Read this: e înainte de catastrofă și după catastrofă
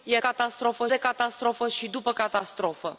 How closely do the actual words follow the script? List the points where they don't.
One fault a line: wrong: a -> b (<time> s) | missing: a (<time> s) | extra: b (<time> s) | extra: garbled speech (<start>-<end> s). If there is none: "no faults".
wrong: înainte -> catastrofă (0.2 s)